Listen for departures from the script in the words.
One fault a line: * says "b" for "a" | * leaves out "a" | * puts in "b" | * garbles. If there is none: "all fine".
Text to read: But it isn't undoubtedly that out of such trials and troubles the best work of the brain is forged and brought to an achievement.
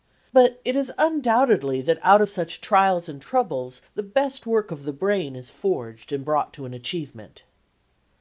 * says "is" for "isn't"